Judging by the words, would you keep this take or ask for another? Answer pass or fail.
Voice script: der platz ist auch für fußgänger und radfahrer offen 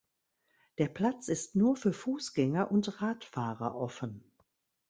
fail